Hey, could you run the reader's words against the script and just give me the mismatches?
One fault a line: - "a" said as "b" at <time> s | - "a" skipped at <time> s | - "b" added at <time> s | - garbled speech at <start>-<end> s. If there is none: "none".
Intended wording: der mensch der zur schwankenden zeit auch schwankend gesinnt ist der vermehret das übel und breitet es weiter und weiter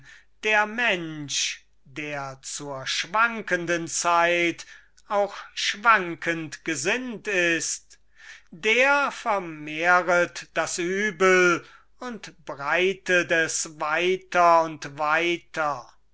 none